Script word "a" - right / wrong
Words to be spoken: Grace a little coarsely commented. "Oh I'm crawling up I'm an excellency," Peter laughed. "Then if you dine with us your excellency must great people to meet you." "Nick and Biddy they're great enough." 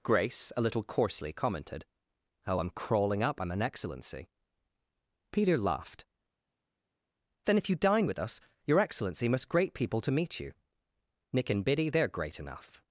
right